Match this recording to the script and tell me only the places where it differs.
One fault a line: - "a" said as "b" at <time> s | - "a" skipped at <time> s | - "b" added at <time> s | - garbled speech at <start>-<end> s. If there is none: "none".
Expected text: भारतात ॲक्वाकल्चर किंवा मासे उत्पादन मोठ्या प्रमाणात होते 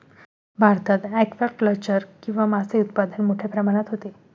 none